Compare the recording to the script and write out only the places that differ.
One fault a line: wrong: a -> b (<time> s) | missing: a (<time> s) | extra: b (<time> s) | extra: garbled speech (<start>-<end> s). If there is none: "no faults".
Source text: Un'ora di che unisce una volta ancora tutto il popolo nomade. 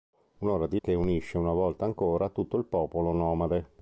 no faults